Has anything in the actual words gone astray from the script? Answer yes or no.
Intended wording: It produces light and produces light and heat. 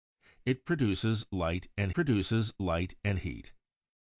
no